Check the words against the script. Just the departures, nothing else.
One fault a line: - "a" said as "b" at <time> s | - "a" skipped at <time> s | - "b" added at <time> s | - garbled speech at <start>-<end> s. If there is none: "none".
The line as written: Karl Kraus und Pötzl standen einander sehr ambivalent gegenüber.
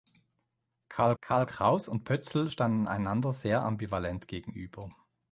- "karl" added at 1.2 s